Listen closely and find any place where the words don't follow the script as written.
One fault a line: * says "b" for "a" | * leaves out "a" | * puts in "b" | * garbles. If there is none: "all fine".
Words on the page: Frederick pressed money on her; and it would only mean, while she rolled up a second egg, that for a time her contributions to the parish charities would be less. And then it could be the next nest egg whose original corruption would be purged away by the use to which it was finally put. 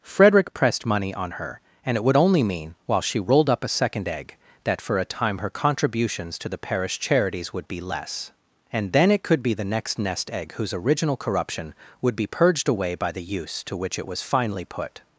all fine